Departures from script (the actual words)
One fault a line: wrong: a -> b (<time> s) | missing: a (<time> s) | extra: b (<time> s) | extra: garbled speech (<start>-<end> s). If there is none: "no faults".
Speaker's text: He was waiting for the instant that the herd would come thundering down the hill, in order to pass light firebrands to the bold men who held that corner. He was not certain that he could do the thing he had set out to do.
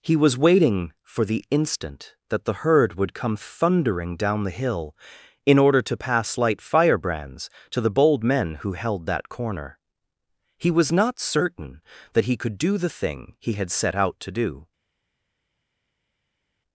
no faults